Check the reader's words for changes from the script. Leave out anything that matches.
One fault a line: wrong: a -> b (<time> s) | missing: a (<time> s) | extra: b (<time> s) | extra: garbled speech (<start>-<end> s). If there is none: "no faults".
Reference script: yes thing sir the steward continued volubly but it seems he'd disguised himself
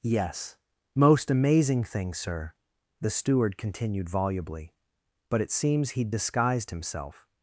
extra: most amazing (0.9 s)